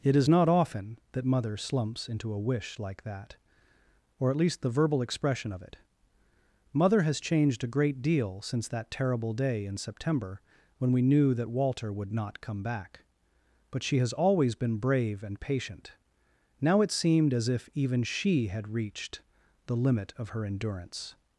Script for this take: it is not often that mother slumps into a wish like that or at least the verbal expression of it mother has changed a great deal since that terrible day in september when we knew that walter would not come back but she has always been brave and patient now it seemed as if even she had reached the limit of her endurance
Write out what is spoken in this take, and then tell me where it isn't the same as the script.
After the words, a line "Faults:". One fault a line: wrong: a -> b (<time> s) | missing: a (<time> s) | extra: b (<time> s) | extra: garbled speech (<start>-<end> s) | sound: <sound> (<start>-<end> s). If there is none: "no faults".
it is not often that mother slumps into a wish like that or at least the verbal expression of it mother has changed a great deal since that terrible day in september when we knew that walter would not come back but she has always been brave and patient now it seemed as if even she had reached the limit of her endurance
Faults:
no faults